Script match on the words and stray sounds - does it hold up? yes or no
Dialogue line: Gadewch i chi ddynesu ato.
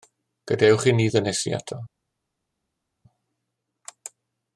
no